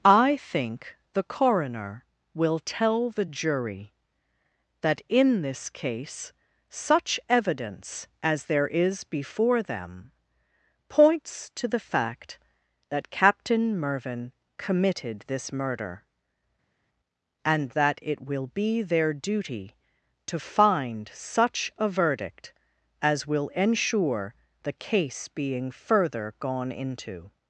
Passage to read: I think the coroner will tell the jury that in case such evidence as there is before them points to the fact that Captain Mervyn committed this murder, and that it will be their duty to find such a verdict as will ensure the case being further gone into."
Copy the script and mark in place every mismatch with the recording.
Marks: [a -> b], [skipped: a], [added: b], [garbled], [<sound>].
I think the coroner will tell the jury that in [added: this] case such evidence as there is before them points to the fact that Captain Mervyn committed this murder, and that it will be their duty to find such a verdict as will ensure the case being further gone into."